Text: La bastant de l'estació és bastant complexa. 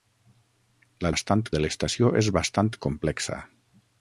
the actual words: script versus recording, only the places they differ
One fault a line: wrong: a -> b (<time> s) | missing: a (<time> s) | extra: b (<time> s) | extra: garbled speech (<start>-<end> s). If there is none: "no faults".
no faults